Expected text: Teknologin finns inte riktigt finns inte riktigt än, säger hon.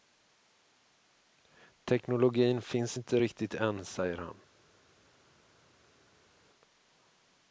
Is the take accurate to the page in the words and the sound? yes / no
no